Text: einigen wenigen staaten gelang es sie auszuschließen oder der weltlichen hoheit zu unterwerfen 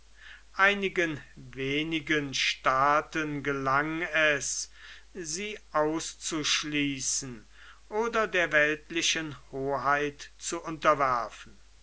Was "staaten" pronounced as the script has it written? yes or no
yes